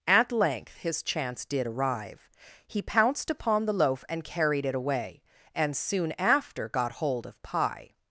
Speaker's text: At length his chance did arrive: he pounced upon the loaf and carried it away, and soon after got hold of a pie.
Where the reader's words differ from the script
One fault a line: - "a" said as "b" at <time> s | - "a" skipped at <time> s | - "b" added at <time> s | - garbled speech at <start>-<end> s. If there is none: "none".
- "a" skipped at 7.4 s